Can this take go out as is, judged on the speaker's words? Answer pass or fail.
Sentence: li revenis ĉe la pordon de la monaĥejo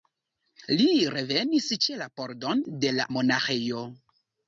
pass